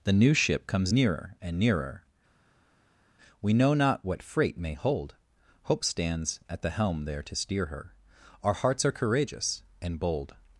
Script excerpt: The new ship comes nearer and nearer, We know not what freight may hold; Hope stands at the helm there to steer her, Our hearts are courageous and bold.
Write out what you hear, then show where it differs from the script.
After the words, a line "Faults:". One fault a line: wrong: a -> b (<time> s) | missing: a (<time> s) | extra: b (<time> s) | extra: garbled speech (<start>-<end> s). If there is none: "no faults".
The new ship comes nearer and nearer, We know not what freight may hold; Hope stands at the helm there to steer her, Our hearts are courageous and bold.
Faults:
no faults